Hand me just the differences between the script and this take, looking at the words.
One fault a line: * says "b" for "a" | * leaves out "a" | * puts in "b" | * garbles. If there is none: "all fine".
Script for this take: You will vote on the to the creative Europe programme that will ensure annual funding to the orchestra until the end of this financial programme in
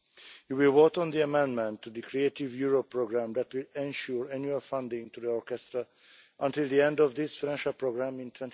* puts in "amendment"